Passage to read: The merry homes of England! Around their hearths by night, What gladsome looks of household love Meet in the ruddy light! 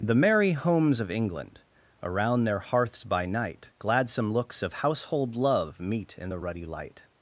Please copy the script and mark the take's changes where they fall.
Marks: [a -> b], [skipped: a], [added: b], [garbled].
The merry homes of England! Around their hearths by night, [skipped: What] gladsome looks of household love Meet in the ruddy light!